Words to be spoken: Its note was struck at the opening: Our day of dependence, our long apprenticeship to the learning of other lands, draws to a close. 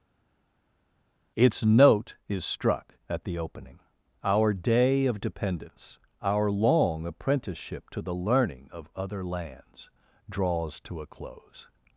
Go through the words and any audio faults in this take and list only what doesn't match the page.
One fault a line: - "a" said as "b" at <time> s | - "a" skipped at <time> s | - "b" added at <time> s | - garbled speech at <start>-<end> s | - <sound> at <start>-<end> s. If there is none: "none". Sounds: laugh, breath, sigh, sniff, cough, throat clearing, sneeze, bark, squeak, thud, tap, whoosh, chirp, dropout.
- "was" said as "is" at 2.3 s